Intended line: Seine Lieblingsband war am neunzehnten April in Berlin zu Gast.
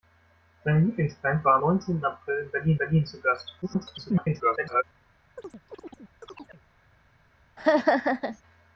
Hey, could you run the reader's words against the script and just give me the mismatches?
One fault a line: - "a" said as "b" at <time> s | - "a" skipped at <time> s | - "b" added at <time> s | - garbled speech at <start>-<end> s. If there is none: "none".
- "am" skipped at 1.6 s
- "Berlin" added at 2.8 s
- garbled speech at 3.6-4.8 s